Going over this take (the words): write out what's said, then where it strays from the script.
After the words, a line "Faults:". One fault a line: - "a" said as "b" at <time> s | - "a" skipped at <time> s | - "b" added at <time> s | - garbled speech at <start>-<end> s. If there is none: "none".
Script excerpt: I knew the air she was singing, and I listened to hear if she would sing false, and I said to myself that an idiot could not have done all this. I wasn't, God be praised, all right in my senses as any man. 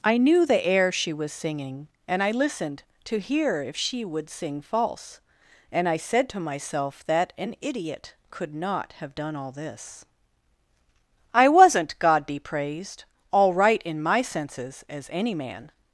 I knew the air she was singing, and I listened to hear if she would sing false, and I said to myself that an idiot could not have done all this. I wasn't, God be praised, all right in my senses as any man.
Faults:
none